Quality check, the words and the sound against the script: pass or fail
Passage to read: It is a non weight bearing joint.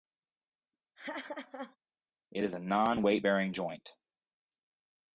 fail